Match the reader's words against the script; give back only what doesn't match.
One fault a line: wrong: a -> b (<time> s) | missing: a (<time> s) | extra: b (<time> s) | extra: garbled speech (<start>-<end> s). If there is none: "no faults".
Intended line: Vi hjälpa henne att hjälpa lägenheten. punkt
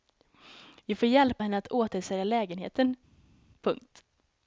extra: får (0.9 s)
wrong: hjälpa -> återsälja (1.7 s)